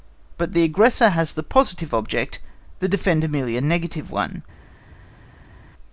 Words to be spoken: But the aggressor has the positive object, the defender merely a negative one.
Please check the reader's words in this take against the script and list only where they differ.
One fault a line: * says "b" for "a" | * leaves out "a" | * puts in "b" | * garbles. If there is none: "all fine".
all fine